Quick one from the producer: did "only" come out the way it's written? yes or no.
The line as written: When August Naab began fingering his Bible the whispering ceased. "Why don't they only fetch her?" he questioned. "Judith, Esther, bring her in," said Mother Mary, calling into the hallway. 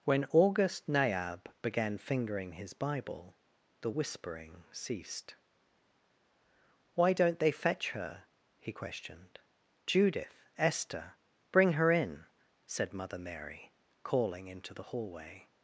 no